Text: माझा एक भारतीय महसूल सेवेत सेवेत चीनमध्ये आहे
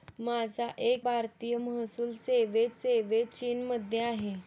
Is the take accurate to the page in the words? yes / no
yes